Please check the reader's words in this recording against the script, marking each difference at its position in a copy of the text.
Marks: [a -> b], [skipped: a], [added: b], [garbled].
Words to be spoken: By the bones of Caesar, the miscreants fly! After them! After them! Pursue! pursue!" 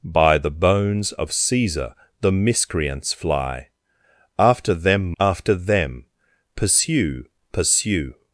By the bones of Caesar, the miscreants fly! After them! After them! Pursue! pursue!"